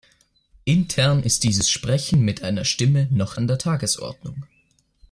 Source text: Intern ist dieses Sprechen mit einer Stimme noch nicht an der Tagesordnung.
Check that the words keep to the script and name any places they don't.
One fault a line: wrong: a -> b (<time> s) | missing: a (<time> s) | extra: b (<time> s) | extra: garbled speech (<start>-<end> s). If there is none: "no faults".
missing: nicht (3.4 s)